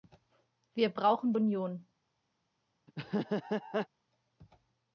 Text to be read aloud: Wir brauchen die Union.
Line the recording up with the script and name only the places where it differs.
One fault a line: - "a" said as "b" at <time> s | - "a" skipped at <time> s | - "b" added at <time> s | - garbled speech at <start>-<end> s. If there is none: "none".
- "die" skipped at 1.3 s